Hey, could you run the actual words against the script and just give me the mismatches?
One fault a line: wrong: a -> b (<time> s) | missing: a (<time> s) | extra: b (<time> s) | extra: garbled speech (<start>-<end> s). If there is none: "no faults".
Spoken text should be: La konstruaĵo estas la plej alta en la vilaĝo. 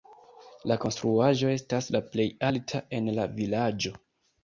no faults